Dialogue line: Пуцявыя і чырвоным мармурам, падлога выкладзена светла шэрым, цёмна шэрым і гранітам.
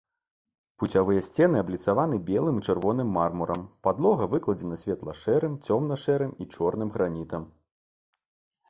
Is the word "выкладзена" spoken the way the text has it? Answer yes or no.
yes